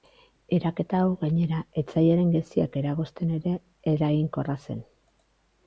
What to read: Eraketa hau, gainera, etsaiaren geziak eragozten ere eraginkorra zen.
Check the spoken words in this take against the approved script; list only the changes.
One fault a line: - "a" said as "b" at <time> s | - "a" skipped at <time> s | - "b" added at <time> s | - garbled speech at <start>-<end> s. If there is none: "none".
none